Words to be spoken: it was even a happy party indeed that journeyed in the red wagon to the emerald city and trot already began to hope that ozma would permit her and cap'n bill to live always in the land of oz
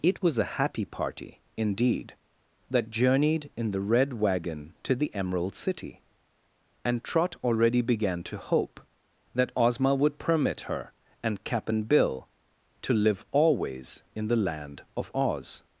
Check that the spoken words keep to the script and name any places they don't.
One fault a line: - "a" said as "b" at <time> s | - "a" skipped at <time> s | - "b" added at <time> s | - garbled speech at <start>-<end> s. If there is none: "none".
- "even" skipped at 0.4 s